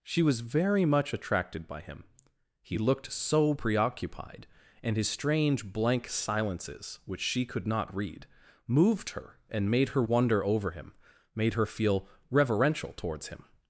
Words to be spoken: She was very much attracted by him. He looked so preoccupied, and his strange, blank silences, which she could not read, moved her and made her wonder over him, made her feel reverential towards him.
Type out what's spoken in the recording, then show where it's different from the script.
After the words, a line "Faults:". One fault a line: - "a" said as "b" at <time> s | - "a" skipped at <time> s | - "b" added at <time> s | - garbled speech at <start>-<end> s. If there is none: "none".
She was very much attracted by him. He looked so preoccupied, and his strange, blank silences, which she could not read, moved her and made her wonder over him, made her feel reverential towards him.
Faults:
none